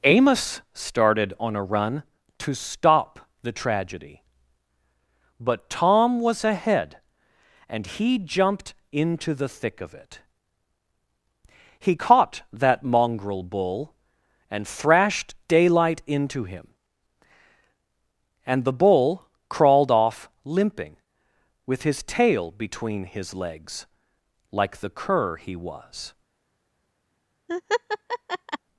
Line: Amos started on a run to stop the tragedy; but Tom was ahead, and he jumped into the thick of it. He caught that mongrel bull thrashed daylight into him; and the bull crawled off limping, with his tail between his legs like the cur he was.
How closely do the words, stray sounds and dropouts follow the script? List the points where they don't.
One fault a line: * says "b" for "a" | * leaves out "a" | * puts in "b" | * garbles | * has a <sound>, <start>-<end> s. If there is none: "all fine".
* puts in "and"
* has a laugh, 27.5-28.6 s